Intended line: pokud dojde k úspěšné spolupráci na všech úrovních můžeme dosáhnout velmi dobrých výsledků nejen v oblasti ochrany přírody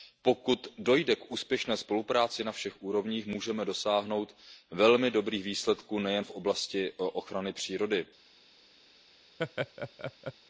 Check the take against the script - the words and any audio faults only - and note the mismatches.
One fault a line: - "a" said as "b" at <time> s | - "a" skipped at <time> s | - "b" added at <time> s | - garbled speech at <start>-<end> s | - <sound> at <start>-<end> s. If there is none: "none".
- laugh at 9.4-10.3 s